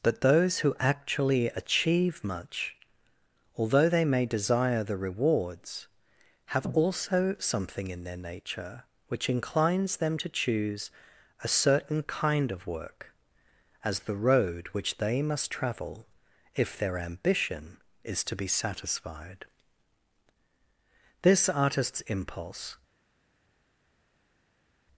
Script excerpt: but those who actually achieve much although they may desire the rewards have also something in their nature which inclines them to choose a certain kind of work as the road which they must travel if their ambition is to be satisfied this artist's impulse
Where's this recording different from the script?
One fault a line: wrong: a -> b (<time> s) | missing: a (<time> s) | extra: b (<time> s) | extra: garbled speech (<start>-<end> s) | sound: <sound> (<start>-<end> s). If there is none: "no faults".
no faults